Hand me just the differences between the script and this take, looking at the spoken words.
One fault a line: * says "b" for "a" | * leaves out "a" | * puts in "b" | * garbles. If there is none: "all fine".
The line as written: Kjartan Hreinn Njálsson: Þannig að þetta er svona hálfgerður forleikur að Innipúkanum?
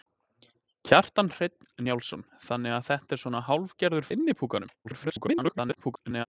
* leaves out "forleikur"
* garbles